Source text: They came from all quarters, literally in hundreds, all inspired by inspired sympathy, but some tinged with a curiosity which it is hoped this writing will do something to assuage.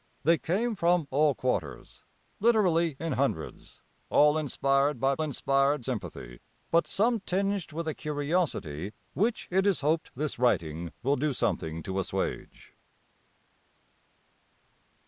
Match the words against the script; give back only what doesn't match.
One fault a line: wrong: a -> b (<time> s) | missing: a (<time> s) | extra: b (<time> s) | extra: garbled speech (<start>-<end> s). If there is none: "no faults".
no faults